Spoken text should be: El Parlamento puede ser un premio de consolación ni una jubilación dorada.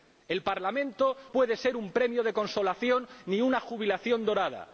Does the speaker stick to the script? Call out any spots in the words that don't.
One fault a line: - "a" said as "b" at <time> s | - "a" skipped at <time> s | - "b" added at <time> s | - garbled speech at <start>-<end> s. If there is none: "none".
none